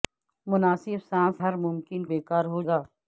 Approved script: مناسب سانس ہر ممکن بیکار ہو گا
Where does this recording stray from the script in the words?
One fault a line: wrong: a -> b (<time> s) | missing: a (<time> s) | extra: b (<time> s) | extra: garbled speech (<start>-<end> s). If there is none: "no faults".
no faults